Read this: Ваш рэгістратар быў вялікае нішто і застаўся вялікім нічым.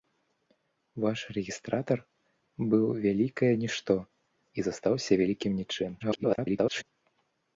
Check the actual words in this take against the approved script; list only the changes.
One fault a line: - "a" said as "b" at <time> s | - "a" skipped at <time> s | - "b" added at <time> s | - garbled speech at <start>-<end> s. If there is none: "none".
- garbled speech at 6.0-6.8 s